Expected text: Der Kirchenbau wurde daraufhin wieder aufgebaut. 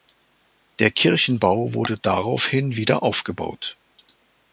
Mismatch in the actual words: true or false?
false